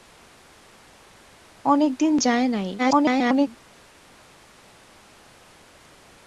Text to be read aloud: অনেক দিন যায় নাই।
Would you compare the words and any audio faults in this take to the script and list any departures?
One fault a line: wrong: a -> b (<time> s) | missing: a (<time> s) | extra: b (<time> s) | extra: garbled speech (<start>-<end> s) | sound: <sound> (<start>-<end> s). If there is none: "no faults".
extra: garbled speech (2.8-3.5 s)